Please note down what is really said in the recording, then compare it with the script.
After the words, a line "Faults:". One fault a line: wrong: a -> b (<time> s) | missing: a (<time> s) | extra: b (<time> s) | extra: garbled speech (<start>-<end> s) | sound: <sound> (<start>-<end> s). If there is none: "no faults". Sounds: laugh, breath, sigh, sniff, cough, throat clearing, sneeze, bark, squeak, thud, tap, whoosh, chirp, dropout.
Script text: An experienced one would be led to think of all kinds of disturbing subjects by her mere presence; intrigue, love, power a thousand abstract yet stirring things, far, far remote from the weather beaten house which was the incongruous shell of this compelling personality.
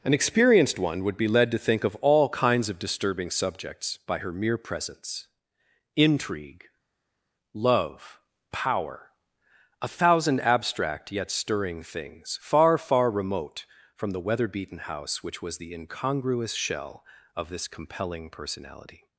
An experienced one would be led to think of all kinds of disturbing subjects by her mere presence; intrigue, love, power a thousand abstract yet stirring things, far, far remote from the weather beaten house which was the incongruous shell of this compelling personality.
Faults:
no faults